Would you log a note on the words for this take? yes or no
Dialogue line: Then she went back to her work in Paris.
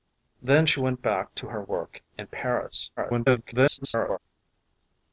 yes